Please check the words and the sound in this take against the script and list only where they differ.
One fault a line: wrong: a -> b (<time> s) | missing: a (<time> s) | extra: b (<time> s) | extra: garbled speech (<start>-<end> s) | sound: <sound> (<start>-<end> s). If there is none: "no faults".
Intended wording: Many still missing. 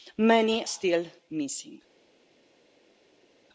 no faults